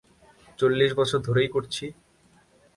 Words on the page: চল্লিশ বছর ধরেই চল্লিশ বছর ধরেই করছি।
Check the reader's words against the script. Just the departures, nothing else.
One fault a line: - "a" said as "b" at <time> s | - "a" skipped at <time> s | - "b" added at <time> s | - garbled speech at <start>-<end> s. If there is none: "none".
- "চল্লিশ বছর ধরেই" skipped at 1.5 s